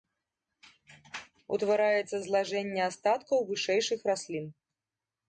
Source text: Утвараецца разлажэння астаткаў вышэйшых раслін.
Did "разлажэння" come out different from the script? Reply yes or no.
no